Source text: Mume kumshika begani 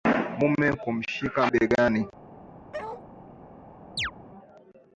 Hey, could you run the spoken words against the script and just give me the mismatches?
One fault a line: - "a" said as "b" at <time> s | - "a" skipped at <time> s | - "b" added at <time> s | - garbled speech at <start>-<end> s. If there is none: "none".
none